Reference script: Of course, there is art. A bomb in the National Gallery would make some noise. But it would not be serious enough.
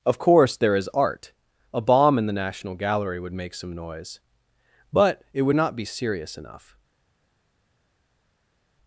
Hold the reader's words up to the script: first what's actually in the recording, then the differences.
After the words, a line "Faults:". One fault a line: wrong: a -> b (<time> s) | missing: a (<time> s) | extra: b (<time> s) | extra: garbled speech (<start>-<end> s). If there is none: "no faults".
Of course, there is art. A bomb in the National Gallery would make some noise. But it would not be serious enough.
Faults:
no faults